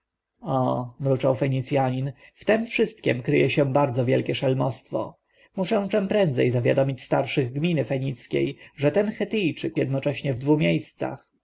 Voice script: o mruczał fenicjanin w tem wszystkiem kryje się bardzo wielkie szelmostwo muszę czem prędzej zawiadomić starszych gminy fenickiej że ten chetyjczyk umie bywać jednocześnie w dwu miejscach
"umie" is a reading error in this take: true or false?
true